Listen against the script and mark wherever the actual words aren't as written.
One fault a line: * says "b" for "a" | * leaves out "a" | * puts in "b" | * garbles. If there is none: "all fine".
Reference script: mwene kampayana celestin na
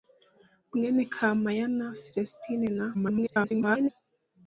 * garbles